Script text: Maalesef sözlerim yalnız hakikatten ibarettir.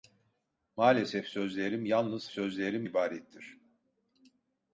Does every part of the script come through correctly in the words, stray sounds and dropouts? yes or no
no